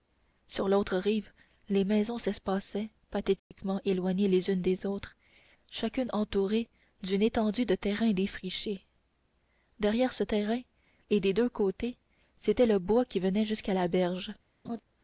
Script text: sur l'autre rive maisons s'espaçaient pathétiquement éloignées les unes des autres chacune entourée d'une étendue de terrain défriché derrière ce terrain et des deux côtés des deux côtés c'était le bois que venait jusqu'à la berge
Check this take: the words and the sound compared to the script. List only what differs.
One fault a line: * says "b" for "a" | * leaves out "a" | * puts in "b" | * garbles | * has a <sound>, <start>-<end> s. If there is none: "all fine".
* puts in "les"
* has a dropout, 3.4-3.5 s
* leaves out "des deux côtés"
* says "qui" for "que"
* has a laugh, 14.6-14.8 s